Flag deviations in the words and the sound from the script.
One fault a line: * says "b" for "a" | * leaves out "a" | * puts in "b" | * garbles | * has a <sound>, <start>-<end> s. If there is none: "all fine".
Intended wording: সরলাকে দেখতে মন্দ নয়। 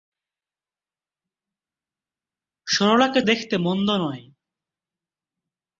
all fine